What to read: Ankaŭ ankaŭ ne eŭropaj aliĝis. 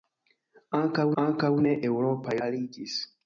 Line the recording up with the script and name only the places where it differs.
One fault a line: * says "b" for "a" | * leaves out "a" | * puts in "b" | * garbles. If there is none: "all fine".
all fine